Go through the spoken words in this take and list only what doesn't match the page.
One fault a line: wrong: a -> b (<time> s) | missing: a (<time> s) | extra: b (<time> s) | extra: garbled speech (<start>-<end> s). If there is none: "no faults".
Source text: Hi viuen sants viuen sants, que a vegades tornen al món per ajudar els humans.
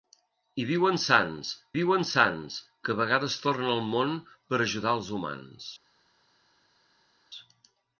no faults